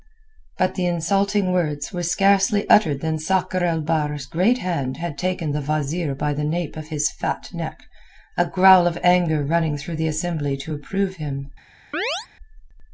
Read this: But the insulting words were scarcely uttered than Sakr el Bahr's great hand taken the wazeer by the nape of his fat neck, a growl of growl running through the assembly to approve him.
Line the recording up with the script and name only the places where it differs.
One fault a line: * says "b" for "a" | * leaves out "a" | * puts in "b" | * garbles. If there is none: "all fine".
* puts in "had"
* says "anger" for "growl"